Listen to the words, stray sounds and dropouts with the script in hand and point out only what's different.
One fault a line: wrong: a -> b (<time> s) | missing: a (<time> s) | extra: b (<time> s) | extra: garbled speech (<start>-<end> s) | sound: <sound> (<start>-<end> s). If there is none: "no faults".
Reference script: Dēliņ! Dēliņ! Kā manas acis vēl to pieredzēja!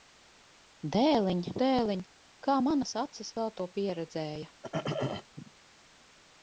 sound: throat clearing (4.6-5.3 s)